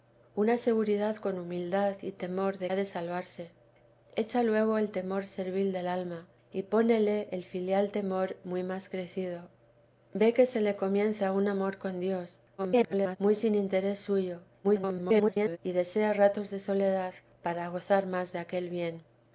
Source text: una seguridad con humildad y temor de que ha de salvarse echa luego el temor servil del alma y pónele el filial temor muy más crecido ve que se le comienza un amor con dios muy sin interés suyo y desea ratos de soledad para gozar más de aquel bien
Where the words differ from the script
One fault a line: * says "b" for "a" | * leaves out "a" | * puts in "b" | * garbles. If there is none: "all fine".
* leaves out "que"
* garbles
* garbles